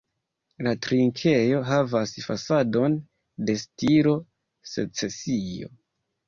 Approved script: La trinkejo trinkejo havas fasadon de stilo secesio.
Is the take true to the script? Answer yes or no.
no